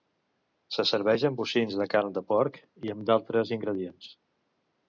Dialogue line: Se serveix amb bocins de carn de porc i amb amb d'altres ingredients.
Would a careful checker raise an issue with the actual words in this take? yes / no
yes